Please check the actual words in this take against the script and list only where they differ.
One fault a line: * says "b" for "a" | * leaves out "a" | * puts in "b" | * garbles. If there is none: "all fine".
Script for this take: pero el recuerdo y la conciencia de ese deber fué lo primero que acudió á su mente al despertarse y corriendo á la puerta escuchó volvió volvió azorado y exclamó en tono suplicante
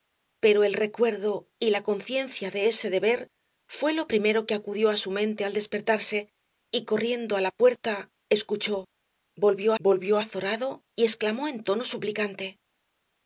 all fine